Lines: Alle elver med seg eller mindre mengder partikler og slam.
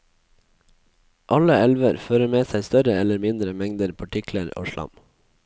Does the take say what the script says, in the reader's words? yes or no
no